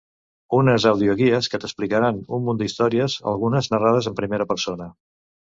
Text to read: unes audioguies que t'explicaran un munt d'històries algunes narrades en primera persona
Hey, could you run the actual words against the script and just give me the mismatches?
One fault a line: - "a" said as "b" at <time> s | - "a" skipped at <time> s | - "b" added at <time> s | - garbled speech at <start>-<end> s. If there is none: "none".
none